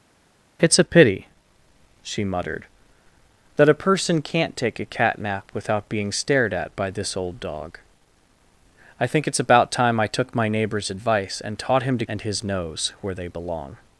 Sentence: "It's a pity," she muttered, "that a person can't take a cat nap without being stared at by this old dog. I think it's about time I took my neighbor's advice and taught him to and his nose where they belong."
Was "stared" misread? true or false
false